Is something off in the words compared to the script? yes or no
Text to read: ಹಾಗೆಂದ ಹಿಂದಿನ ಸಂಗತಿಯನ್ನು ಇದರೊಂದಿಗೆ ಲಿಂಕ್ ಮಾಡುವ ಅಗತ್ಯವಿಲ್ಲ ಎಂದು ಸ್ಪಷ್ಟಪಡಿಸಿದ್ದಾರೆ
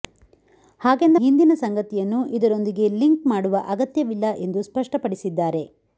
no